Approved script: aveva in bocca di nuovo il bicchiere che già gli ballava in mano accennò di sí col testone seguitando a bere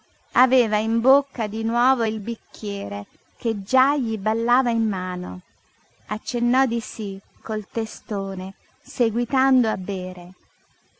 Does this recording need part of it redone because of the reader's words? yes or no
no